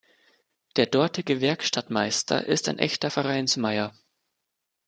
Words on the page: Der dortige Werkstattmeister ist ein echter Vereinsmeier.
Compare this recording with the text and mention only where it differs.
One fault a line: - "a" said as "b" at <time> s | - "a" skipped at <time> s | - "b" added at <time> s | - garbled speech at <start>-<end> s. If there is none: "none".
none